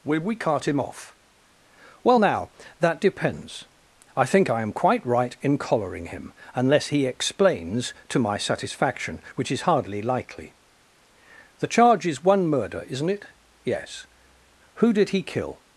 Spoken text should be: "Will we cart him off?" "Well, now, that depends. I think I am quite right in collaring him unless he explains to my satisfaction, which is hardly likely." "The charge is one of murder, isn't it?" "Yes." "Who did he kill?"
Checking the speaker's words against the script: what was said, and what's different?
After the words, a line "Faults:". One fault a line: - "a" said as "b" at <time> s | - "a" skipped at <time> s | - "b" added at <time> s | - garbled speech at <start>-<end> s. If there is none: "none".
"Will we cart him off?" "Well, now, that depends. I think I am quite right in collaring him unless he explains to my satisfaction, which is hardly likely." "The charge is one murder, isn't it?" "Yes." "Who did he kill?"
Faults:
- "of" skipped at 12.5 s